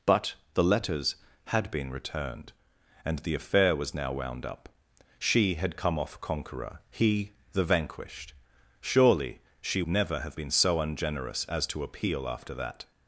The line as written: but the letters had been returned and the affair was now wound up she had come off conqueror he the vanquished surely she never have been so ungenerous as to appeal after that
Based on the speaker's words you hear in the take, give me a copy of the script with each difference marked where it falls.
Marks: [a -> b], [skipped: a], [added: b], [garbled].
but the letters had been returned and the affair was now wound up she had come off conqueror he the vanquished surely she never have been so ungenerous as to appeal after that